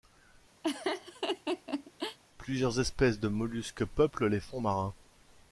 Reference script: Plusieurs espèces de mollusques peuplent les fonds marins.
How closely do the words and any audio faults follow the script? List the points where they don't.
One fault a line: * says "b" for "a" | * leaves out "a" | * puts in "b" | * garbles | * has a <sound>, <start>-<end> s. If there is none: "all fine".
* has a laugh, 0.6-2.2 s